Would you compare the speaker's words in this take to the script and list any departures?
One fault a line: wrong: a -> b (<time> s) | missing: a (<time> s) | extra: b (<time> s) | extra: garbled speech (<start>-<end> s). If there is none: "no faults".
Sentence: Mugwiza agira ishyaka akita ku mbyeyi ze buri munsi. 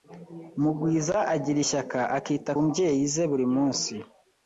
missing: ku (2.5 s)